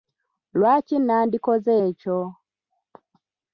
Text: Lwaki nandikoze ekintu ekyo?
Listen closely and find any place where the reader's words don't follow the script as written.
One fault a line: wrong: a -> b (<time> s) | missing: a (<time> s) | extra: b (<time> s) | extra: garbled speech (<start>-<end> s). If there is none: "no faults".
missing: ekintu (1.7 s)